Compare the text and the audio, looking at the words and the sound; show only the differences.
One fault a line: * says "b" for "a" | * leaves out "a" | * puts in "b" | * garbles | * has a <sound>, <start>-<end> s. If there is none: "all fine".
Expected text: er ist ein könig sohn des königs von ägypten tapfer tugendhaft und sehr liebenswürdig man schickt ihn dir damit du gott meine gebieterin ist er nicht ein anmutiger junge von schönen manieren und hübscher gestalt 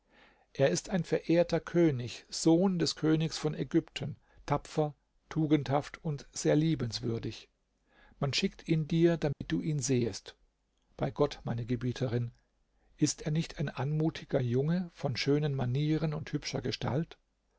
* puts in "verehrter"
* has a dropout, 9.3-9.4 s
* puts in "ihn sehest bei"